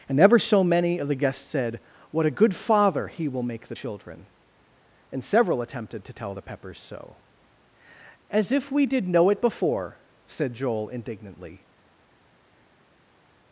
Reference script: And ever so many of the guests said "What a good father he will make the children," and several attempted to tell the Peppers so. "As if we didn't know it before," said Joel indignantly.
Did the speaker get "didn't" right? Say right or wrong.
wrong